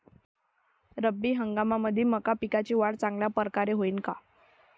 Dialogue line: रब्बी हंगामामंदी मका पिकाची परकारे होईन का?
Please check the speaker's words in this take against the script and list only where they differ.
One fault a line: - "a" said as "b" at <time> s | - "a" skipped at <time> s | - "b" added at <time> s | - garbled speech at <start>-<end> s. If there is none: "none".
- "वाढ चांगल्या" added at 2.7 s